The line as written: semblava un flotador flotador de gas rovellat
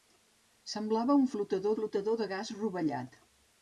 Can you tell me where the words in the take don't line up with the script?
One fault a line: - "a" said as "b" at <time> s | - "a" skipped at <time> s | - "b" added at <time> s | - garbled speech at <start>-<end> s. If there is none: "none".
none